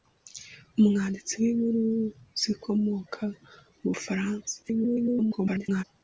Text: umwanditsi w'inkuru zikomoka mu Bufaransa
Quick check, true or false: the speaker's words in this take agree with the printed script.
false